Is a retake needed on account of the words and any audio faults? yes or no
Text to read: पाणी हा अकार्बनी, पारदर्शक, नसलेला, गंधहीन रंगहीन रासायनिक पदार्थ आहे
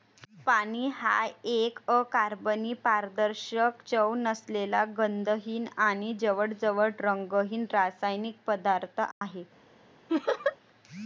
yes